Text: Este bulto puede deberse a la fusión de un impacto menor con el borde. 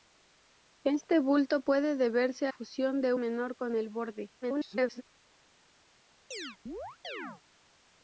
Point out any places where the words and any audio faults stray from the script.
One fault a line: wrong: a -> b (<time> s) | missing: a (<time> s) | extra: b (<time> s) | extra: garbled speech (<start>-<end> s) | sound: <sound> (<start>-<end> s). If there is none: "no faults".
missing: la (2.5 s)
missing: un impacto (3.1 s)
extra: garbled speech (4.4-5.0 s)
sound: chirp (6.3-7.4 s)